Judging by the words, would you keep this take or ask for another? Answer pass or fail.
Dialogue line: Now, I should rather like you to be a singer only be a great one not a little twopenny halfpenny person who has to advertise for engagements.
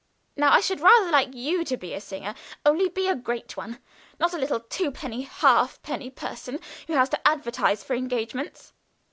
pass